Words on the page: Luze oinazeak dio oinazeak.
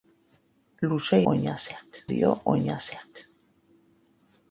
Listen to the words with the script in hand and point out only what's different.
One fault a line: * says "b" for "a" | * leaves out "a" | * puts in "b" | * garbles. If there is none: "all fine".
all fine